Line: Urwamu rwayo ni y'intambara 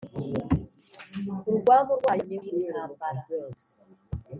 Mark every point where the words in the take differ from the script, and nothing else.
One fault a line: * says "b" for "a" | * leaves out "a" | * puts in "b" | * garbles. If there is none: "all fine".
all fine